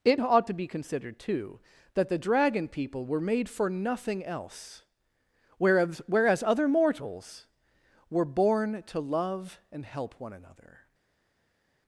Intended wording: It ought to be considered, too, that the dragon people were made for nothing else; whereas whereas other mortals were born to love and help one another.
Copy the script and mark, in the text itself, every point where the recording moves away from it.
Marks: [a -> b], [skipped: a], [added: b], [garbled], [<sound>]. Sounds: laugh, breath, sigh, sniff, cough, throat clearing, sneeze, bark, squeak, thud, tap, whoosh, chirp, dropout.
It ought to be considered, too, that the dragon people were made for nothing else; whereas whereas other mortals were born to love and help one another.